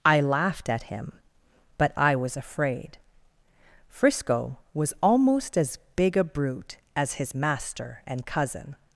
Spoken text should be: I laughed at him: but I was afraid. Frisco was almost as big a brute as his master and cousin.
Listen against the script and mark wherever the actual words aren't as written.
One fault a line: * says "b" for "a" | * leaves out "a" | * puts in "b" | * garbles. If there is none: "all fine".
all fine